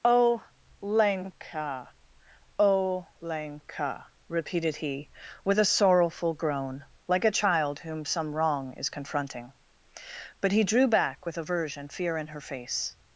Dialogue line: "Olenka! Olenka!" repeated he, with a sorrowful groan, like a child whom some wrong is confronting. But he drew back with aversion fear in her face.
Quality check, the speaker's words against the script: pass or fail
pass